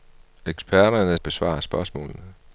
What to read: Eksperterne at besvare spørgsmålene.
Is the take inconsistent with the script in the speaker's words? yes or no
no